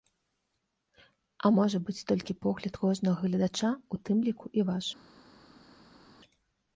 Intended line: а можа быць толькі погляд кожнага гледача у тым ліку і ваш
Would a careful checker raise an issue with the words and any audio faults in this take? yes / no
no